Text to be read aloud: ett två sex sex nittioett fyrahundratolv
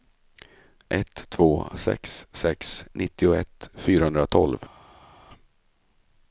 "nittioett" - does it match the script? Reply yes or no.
yes